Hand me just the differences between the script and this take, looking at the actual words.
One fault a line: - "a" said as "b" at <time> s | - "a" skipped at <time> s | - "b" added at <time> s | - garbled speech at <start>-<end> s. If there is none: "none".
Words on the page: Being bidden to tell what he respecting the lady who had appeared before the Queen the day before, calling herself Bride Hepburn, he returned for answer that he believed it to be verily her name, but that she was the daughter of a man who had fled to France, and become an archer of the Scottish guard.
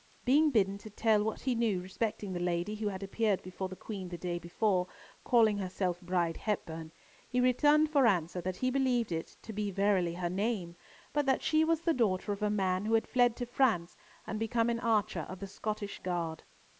- "knew" added at 1.5 s